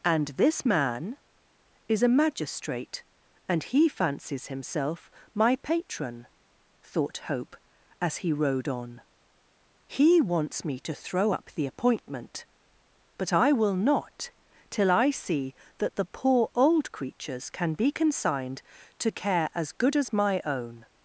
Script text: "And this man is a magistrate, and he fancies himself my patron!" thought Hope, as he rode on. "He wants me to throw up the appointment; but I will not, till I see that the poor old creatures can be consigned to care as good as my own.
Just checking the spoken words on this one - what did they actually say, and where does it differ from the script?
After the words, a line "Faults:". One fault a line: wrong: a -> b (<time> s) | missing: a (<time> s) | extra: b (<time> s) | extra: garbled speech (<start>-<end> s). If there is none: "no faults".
"And this man is a magistrate, and he fancies himself my patron!" thought Hope, as he rode on. "He wants me to throw up the appointment; but I will not, till I see that the poor old creatures can be consigned to care as good as my own.
Faults:
no faults